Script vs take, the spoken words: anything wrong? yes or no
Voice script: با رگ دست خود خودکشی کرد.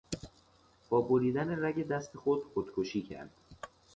yes